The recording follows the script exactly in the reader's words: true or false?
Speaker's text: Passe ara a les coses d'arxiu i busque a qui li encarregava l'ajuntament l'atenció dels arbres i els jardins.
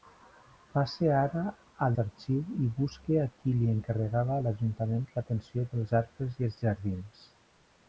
false